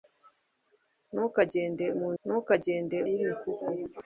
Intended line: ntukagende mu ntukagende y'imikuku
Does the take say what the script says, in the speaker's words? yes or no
yes